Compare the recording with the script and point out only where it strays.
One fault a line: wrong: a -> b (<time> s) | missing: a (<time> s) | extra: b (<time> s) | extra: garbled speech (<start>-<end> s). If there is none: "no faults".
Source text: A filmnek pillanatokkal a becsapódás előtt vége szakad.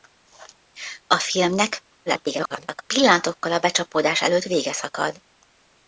extra: garbled speech (2.1-2.8 s)